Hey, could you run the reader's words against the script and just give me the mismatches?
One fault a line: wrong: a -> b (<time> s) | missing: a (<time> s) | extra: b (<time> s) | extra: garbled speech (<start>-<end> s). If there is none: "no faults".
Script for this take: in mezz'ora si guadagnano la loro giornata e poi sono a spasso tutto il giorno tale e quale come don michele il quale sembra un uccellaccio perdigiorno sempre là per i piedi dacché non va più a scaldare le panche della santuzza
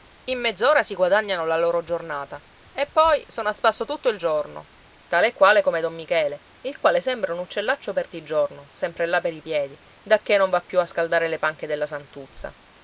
no faults